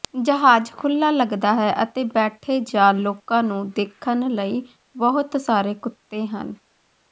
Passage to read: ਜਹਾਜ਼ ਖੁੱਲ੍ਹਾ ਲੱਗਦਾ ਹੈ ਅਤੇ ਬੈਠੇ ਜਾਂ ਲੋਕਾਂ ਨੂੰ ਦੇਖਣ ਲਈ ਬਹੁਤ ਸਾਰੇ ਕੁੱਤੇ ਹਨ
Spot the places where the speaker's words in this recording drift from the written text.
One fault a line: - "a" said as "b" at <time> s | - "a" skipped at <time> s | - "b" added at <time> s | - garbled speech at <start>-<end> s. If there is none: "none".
none